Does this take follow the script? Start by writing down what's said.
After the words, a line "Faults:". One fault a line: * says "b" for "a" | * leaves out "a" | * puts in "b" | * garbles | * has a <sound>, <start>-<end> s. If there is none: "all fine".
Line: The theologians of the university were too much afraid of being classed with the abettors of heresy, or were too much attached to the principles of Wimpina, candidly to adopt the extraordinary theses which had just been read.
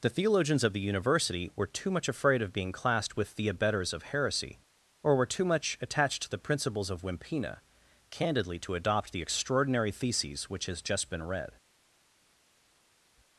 The theologians of the university were too much afraid of being classed with the abettors of heresy, or were too much attached to the principles of Wimpina, candidly to adopt the extraordinary theses which has just been read.
Faults:
* says "has" for "had"